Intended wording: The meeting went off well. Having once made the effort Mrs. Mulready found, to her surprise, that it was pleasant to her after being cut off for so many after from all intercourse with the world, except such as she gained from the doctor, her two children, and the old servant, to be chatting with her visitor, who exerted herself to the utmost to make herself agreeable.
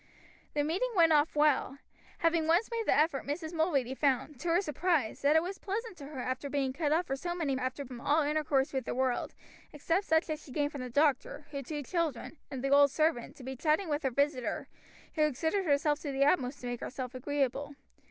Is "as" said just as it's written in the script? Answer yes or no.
yes